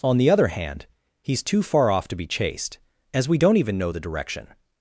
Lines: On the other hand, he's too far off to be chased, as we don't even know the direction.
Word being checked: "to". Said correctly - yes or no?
yes